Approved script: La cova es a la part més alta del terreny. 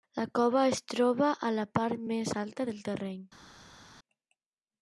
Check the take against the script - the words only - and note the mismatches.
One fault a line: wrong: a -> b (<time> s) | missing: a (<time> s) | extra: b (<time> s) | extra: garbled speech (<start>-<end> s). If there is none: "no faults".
extra: troba (0.9 s)